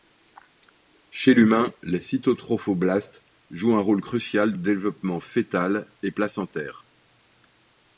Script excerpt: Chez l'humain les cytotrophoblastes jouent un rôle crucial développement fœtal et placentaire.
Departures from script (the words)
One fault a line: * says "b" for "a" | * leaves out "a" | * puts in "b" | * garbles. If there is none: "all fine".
all fine